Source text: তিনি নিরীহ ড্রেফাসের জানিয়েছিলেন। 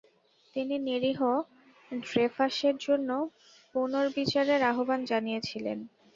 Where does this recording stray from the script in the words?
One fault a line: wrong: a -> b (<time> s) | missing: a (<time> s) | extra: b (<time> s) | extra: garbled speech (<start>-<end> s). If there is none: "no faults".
extra: জন্য পুনর্বিচারের আহ্বান (2.8 s)